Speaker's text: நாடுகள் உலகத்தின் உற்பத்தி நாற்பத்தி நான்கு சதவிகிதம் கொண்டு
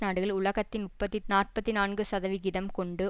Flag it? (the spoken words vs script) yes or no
no